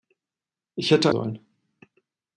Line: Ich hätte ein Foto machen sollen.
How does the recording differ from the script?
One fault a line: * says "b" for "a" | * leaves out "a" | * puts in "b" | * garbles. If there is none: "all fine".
* leaves out "ein Foto machen"